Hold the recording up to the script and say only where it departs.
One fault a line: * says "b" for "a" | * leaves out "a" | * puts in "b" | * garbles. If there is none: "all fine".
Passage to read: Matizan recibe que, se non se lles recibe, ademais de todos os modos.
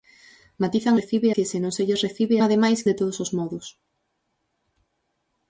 all fine